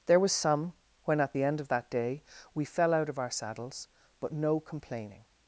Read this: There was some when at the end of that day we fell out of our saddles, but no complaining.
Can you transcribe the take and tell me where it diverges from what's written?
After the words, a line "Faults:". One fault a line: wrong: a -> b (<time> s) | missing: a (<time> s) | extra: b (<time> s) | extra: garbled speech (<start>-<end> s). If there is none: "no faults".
There was some when at the end of that day we fell out of our saddles, but no complaining.
Faults:
no faults